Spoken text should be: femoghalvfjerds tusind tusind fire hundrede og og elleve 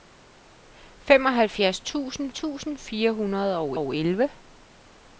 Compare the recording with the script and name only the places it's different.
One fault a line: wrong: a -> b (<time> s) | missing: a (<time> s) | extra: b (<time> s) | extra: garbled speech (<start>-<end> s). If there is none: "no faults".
no faults